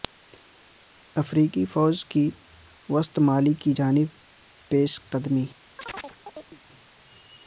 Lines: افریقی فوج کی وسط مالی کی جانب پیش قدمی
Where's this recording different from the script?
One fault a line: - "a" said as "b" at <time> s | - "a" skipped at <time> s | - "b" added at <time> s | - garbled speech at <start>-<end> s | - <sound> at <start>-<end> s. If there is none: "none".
- chirp at 5.8-6.6 s